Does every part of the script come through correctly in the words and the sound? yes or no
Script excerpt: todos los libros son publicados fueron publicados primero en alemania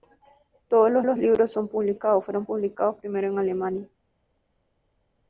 no